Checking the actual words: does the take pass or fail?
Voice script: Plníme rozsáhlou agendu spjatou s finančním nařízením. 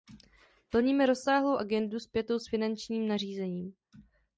pass